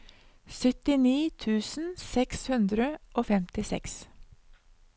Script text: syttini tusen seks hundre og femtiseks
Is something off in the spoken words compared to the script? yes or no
no